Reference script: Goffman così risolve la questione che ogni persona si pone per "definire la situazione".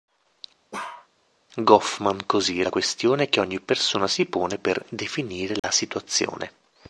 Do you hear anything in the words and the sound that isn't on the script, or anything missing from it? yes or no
yes